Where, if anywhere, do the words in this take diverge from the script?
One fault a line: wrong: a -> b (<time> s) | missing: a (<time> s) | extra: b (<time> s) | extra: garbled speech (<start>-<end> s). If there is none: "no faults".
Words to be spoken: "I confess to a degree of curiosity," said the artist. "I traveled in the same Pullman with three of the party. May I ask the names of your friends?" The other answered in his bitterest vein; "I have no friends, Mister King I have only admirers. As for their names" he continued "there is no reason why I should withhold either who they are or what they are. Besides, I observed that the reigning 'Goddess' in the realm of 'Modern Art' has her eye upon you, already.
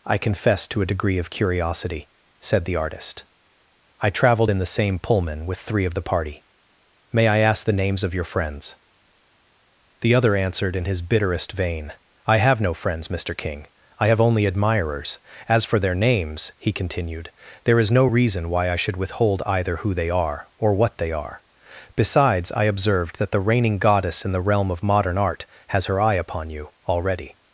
no faults